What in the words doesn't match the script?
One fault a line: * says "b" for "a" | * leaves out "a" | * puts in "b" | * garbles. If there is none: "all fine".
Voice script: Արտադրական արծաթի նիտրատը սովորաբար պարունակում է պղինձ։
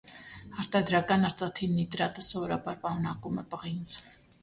all fine